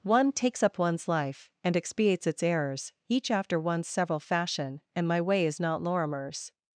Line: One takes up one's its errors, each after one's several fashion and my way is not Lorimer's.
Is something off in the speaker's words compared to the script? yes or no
yes